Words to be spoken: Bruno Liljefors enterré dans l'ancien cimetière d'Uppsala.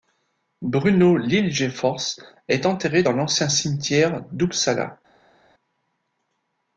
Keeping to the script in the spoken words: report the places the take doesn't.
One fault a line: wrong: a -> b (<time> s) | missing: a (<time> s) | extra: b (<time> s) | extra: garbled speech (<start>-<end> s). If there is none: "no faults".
extra: est (2.5 s)